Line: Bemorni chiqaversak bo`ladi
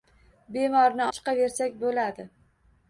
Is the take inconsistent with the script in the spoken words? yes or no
no